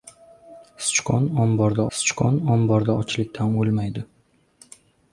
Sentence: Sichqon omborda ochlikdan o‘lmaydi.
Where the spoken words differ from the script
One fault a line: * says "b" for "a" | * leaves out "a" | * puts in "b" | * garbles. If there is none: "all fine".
* puts in "sichqon omborda"